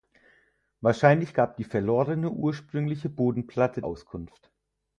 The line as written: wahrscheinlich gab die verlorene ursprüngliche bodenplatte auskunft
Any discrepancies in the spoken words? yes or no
no